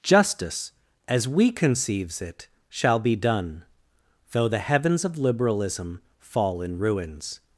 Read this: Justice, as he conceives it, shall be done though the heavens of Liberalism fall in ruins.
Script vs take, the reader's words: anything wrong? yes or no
yes